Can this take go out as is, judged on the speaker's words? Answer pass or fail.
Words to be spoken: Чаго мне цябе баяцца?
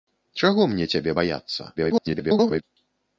fail